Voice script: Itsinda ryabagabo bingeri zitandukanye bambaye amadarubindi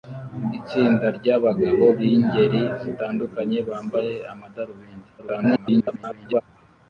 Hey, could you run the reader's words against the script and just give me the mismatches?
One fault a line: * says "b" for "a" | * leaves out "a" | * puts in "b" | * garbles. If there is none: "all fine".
* garbles